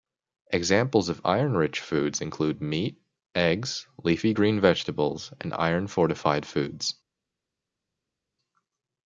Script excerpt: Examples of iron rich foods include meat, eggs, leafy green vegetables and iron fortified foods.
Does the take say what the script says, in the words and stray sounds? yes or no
yes